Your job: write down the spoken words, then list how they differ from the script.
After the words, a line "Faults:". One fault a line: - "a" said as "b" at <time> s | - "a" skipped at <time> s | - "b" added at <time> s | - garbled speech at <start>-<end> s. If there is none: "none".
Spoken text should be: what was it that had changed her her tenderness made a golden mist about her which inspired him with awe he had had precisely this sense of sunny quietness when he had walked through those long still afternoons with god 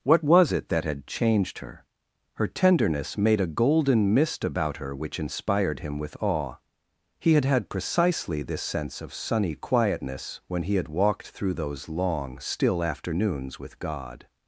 what was it that had changed her her tenderness made a golden mist about her which inspired him with awe he had had precisely this sense of sunny quietness when he had walked through those long still afternoons with god
Faults:
none